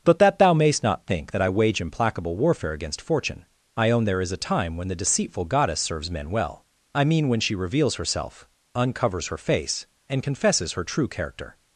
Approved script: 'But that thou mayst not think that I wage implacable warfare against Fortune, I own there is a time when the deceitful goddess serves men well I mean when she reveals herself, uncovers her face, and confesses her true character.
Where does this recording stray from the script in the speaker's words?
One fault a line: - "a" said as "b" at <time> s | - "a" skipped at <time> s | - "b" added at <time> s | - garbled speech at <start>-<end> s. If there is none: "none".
none